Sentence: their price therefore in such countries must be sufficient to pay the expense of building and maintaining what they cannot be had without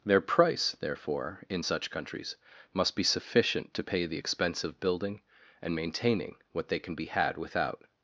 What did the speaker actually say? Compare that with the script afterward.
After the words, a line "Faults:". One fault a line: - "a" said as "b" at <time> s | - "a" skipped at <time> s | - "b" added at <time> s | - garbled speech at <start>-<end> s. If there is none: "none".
their price therefore in such countries must be sufficient to pay the expense of building and maintaining what they can be had without
Faults:
- "cannot" said as "can" at 6.8 s